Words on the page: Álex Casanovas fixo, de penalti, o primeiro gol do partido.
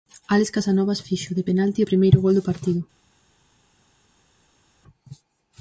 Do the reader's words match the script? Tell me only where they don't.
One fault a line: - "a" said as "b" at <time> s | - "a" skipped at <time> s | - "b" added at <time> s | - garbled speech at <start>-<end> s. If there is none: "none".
none